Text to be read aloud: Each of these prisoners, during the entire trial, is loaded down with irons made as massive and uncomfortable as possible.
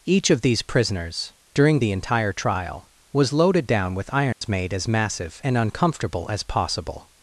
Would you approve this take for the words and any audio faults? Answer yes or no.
no